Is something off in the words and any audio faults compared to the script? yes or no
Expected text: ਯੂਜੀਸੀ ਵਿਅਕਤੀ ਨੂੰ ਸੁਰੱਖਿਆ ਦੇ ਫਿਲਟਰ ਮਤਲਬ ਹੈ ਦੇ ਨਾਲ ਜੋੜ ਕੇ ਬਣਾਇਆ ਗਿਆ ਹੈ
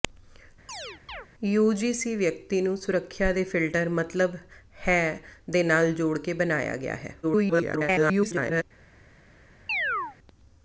yes